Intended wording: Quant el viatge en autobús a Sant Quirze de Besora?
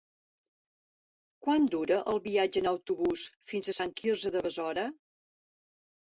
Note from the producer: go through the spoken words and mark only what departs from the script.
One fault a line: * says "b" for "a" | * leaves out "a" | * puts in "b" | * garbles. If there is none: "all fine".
* puts in "dura"
* puts in "fins"